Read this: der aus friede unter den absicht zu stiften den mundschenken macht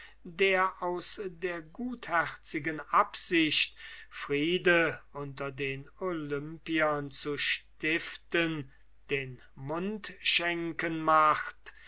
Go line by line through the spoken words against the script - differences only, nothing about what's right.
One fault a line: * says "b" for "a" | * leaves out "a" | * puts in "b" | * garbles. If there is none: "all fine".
* puts in "der gutherzigen absicht"
* says "olympiern" for "absicht"